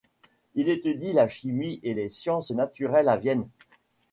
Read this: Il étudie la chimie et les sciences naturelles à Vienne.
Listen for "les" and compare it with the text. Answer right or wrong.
right